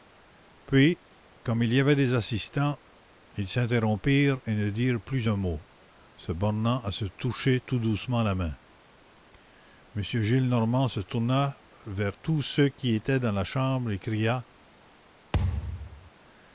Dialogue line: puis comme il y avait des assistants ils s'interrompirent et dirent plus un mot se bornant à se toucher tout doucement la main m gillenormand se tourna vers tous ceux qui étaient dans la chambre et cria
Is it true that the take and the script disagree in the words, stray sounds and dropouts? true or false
true